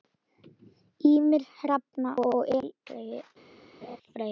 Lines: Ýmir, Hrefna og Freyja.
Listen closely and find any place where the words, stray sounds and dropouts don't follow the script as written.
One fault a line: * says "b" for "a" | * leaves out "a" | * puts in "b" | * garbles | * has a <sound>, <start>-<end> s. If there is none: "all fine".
* has a laugh, 3.8-4.0 s